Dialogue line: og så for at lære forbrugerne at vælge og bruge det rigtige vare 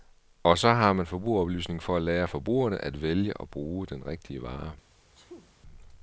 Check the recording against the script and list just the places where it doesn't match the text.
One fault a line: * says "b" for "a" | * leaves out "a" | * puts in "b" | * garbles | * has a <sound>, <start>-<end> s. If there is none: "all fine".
* puts in "har man forbrugeroplysning"
* says "den" for "det"
* has a sneeze, 5.1-5.5 s